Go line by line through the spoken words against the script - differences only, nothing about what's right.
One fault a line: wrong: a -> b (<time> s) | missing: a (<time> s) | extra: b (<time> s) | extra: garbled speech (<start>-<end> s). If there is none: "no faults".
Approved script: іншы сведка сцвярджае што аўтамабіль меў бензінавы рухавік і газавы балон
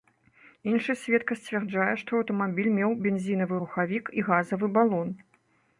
no faults